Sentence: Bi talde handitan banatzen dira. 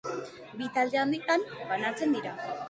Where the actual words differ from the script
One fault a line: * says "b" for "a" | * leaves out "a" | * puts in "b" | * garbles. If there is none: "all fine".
all fine